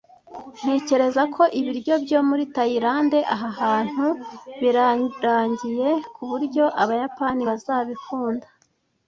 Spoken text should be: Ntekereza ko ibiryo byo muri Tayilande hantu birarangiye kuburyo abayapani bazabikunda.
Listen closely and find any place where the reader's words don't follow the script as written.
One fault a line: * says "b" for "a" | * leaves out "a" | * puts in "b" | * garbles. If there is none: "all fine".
* puts in "aha"